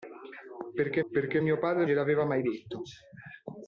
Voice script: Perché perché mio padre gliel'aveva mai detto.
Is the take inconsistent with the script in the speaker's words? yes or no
no